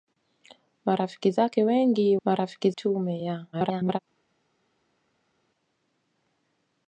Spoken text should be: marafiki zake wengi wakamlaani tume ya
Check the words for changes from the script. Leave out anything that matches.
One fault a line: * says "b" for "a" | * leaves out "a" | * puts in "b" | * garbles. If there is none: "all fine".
* says "marafiki" for "wakamlaani"
* garbles